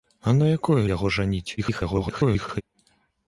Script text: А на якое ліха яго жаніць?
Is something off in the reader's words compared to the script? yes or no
yes